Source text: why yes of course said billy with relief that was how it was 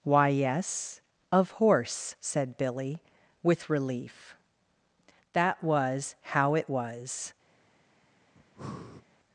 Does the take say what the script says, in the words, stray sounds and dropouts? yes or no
no